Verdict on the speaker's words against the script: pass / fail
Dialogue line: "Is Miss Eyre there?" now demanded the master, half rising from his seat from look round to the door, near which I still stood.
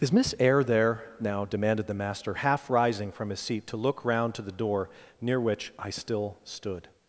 fail